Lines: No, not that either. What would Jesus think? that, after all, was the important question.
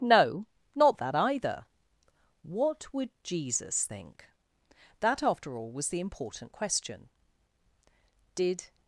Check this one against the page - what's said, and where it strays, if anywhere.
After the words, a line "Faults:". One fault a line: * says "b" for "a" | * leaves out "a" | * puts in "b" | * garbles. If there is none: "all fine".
No, not that either. What would Jesus think? that, after all, was the important question. Did
Faults:
* puts in "Did"